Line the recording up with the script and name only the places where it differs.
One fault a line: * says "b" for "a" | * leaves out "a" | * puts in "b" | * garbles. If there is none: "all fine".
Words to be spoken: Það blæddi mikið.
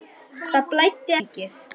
all fine